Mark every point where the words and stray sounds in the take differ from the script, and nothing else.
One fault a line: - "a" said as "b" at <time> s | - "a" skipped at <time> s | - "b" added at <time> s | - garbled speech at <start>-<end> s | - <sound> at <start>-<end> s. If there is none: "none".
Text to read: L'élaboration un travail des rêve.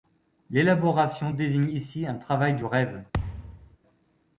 - "désigne ici" added at 1.3 s
- "des" said as "du" at 2.5 s
- thud at 3.1-3.8 s